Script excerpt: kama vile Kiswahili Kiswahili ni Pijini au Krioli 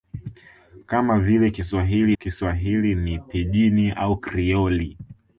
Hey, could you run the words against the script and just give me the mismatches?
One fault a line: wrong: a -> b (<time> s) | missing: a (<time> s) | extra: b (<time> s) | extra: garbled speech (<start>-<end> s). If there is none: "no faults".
no faults